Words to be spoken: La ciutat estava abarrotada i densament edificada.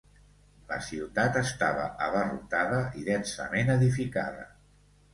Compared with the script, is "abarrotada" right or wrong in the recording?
right